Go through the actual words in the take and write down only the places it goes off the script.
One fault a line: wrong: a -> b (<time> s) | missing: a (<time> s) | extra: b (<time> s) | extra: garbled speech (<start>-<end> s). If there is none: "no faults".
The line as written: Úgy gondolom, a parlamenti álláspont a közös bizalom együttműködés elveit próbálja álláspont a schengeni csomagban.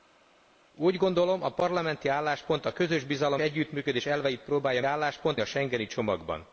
no faults